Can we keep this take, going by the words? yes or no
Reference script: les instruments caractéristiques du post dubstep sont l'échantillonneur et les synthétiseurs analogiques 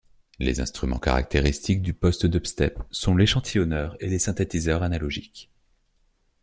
yes